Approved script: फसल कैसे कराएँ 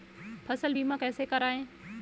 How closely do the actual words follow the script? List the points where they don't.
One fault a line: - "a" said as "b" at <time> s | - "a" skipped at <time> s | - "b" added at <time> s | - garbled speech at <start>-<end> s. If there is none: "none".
- "बीमा" added at 0.7 s